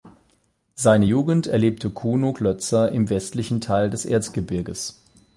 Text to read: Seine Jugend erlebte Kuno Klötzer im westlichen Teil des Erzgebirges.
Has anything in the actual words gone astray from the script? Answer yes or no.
no